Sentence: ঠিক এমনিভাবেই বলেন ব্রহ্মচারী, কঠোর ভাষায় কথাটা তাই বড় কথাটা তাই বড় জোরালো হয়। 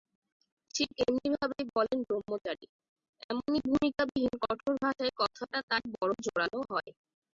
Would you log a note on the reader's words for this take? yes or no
yes